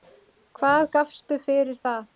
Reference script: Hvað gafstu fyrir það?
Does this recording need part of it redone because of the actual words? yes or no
no